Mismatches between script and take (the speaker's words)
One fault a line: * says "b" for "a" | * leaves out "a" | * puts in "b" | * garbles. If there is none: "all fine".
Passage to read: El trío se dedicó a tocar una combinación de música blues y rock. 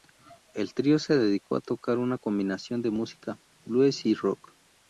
all fine